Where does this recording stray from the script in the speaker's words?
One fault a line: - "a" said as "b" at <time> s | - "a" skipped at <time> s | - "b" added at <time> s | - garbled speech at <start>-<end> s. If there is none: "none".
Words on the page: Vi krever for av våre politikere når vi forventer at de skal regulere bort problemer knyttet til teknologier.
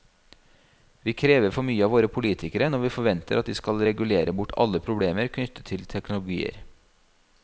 - "mye" added at 1.7 s
- "alle" added at 4.6 s